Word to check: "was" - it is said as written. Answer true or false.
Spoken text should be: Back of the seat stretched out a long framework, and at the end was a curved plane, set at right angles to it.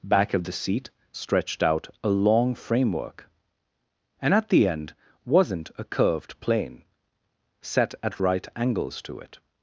false